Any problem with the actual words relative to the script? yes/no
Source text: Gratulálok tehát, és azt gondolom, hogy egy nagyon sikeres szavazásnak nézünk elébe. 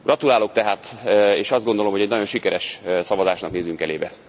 no